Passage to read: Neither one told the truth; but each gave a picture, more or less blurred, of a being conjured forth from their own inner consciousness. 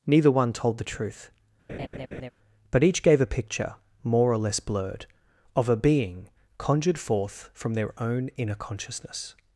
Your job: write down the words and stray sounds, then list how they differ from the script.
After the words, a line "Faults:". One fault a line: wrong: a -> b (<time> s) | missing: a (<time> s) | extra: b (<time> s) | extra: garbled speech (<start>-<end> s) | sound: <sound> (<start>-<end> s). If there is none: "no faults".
Neither one told the truth; but each gave a picture, more or less blurred, of a being conjured forth from their own inner consciousness.
Faults:
sound: laugh (1.7-2.3 s)